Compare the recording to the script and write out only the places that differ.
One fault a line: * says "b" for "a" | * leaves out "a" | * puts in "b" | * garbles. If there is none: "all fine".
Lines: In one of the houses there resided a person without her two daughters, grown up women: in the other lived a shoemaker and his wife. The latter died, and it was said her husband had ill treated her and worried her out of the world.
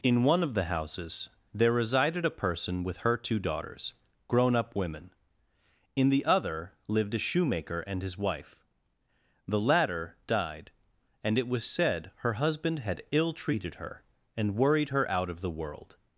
* says "with" for "without"